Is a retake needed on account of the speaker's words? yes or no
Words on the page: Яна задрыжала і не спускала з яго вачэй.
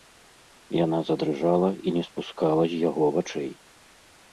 no